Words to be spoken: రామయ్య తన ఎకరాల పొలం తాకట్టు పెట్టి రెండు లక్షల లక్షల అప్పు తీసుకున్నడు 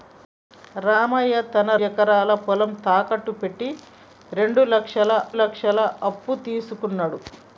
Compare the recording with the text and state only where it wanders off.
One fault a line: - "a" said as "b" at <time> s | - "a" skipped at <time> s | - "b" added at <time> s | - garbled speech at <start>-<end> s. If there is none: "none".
none